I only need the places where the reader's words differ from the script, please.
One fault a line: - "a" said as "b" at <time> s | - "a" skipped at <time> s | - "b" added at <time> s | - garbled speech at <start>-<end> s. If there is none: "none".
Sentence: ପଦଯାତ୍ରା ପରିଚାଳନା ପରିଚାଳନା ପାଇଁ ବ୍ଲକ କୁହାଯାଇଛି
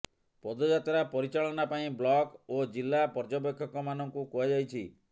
- "ପରିଚାଳନା" skipped at 1.7 s
- "ଓ ଜିଲ୍ଲା ପର୍ଯ୍ୟବେକ୍ଷକମାନଙ୍କୁ" added at 2.5 s